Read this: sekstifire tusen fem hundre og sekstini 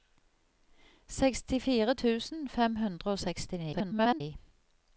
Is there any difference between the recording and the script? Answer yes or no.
yes